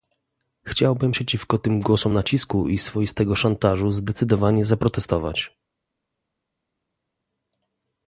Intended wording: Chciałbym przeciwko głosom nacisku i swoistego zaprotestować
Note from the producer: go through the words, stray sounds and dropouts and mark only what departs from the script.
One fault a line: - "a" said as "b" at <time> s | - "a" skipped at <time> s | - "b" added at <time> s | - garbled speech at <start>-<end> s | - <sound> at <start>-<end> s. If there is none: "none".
- "tym" added at 1.6 s
- "szantażu zdecydowanie" added at 3.3 s